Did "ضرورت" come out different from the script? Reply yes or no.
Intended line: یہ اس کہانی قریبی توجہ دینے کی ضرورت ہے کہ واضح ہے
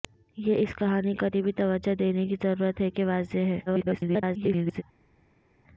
no